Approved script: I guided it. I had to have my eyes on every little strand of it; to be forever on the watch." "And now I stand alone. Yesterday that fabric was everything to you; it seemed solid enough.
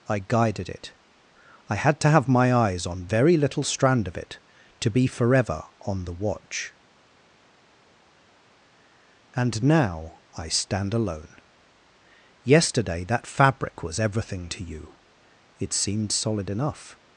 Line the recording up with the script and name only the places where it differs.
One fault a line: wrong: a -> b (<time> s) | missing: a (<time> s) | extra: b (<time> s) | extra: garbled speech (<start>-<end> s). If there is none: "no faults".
wrong: every -> very (3.0 s)